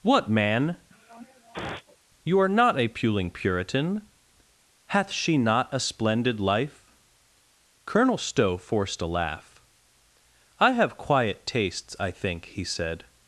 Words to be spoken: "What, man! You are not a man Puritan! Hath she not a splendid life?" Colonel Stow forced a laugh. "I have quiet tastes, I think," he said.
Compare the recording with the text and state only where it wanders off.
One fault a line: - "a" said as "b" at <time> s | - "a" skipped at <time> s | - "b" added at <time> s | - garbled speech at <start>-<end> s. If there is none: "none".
- "man" said as "puling" at 2.9 s